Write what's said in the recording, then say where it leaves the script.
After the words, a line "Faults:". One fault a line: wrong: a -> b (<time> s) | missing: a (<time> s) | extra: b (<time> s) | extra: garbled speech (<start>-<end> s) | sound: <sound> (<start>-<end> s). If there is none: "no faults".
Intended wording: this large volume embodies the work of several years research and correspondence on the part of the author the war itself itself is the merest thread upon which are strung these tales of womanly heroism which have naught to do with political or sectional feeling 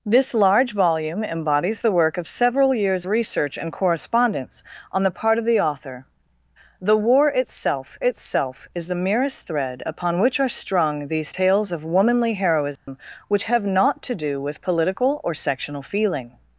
this large volume embodies the work of several years research and correspondence on the part of the author the war itself itself is the merest thread upon which are strung these tales of womanly heroism which have naught to do with political or sectional feeling
Faults:
sound: dropout (12.8-12.9 s)